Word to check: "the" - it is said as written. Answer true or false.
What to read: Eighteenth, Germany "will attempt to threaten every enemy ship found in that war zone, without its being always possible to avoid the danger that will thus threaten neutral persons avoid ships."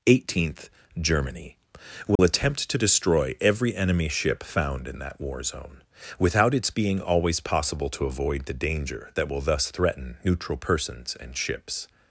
true